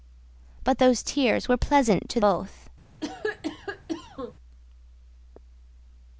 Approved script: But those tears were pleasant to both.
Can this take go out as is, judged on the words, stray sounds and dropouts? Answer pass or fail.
fail